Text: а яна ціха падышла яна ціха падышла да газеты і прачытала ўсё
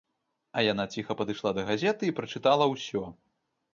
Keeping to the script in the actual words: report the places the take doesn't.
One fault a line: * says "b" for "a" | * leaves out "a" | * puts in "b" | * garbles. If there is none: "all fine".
* leaves out "яна ціха падышла"